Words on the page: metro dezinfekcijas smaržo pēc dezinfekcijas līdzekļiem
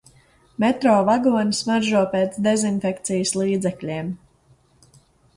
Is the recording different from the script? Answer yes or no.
yes